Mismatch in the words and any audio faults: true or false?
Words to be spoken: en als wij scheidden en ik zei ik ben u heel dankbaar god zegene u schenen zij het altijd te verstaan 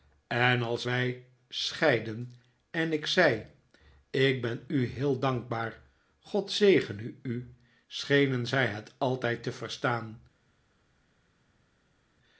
false